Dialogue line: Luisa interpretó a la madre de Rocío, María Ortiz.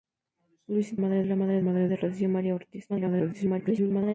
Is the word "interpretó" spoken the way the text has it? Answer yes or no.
no